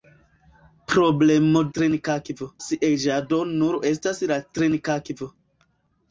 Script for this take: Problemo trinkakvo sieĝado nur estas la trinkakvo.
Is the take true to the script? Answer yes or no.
yes